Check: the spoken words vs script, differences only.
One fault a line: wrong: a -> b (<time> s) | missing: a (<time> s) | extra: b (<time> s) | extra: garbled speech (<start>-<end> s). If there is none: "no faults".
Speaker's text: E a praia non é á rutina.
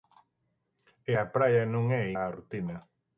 no faults